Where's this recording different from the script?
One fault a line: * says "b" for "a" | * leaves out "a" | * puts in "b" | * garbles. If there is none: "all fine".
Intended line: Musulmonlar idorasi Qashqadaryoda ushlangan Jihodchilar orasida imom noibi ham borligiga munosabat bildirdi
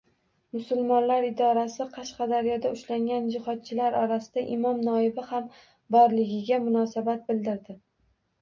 all fine